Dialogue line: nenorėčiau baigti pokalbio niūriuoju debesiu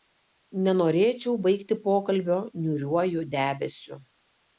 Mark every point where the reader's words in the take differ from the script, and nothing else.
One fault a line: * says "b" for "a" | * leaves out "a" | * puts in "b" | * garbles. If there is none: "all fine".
all fine